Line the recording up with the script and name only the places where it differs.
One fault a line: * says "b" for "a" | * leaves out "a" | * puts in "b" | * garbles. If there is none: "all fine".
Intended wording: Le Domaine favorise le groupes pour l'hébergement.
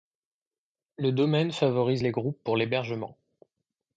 * says "les" for "le"